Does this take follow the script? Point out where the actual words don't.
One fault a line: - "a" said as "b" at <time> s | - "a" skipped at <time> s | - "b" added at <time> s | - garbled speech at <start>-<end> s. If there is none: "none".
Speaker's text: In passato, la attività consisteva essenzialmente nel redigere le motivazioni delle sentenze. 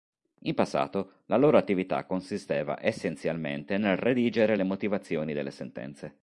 - "loro" added at 1.4 s